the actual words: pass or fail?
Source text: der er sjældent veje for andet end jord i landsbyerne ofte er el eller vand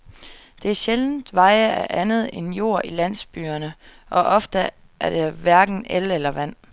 fail